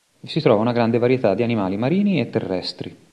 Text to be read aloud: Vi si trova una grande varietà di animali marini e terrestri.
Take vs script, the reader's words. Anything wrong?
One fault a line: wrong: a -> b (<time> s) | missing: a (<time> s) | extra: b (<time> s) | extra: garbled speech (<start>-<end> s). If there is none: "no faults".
no faults